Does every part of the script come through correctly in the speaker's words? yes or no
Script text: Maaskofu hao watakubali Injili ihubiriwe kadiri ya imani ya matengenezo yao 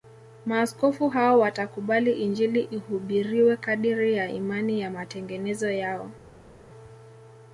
yes